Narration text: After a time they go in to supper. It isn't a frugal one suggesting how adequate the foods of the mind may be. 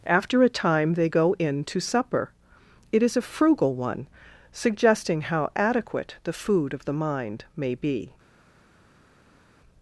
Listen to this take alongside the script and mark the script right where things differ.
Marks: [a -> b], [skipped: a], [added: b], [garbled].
After a time they go in to supper. It [isn't -> is] a frugal one suggesting how adequate the [foods -> food] of the mind may be.